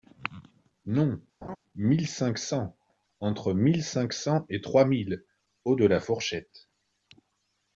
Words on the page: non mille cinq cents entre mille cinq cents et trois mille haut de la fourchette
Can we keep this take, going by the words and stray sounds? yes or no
no